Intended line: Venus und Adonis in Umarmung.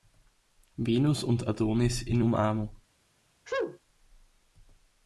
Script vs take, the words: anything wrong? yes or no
no